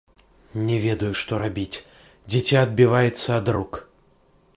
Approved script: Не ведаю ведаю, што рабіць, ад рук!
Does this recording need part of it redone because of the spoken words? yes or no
yes